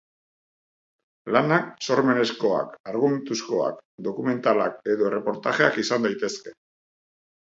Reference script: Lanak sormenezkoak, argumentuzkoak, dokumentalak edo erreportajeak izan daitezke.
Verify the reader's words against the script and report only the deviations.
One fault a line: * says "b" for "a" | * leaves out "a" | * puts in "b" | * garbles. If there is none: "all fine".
all fine